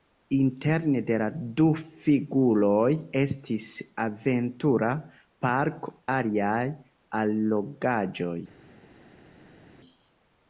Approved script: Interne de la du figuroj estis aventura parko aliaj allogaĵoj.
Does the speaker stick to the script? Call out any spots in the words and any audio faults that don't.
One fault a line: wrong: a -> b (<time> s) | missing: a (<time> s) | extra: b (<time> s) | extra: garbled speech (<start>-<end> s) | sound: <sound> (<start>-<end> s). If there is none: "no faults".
no faults